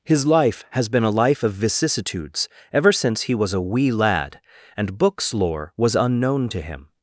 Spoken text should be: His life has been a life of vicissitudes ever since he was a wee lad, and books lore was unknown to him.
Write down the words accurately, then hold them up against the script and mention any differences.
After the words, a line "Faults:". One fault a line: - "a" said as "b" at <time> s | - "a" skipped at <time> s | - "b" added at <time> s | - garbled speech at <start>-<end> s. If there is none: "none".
His life has been a life of vicissitudes ever since he was a wee lad, and books lore was unknown to him.
Faults:
none